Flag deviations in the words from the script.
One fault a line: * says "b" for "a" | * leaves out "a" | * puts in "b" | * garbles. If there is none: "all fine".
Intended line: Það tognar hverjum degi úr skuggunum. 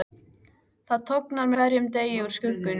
all fine